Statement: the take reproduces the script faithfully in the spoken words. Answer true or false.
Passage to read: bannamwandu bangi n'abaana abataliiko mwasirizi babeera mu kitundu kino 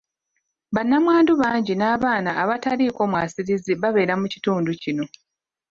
true